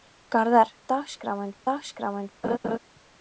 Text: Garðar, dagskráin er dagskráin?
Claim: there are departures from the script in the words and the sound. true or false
true